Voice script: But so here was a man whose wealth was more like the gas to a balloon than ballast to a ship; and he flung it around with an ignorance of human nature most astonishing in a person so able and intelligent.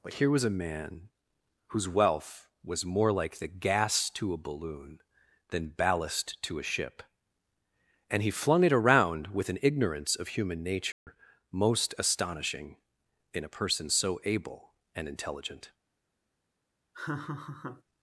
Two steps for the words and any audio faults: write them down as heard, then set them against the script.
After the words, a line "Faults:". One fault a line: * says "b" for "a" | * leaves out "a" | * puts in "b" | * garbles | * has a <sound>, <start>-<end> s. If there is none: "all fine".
But here was a man whose wealth was more like the gas to a balloon than ballast to a ship; and he flung it around with an ignorance of human nature most astonishing in a person so able and intelligent.
Faults:
* leaves out "so"
* has a dropout, 10.9-11.1 s
* has a laugh, 16.9-17.8 s